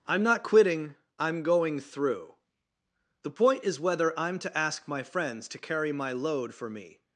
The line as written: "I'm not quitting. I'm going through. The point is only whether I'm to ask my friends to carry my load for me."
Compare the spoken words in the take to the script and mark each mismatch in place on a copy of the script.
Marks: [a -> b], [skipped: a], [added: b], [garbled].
"I'm not quitting. I'm going through. The point is [skipped: only] whether I'm to ask my friends to carry my load for me."